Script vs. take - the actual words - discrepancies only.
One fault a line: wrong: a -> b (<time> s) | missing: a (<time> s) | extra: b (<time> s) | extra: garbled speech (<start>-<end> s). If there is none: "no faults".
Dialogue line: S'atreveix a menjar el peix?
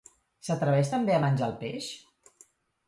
extra: també (0.9 s)